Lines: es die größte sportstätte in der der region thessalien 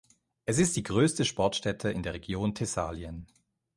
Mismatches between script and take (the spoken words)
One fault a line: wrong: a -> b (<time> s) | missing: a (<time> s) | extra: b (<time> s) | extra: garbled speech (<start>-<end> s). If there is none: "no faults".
extra: ist (0.6 s)
missing: der (2.2 s)